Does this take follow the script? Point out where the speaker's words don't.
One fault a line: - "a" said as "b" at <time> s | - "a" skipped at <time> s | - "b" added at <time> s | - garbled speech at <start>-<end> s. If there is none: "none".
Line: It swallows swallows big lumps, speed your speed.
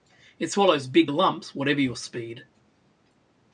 - "swallows" skipped at 0.9 s
- "speed" said as "whatever" at 1.5 s